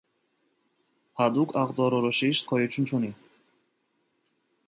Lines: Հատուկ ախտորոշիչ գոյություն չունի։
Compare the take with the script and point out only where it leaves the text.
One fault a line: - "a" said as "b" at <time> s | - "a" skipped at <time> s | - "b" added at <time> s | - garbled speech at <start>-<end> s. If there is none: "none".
none